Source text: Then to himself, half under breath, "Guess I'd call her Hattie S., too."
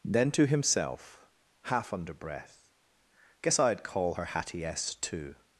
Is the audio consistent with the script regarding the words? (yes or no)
yes